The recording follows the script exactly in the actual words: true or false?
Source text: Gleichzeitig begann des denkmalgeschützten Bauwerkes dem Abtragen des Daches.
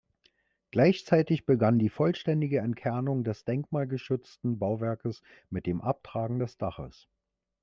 false